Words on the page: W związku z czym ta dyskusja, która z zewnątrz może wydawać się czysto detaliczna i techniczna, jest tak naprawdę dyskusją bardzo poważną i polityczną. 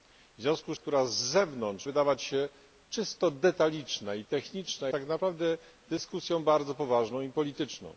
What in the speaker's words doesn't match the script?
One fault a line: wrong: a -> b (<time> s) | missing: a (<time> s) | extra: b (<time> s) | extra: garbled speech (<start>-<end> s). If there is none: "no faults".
missing: czym ta dyskusja (0.8 s)
missing: może (1.9 s)
missing: jest (4.9 s)